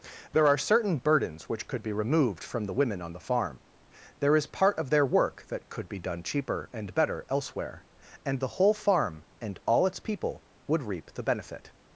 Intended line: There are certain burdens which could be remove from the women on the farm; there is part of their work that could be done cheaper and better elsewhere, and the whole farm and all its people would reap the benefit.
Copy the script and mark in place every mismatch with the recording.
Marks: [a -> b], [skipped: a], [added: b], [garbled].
There are certain burdens which could be [remove -> removed] from the women on the farm; there is part of their work that could be done cheaper and better elsewhere, and the whole farm and all its people would reap the benefit.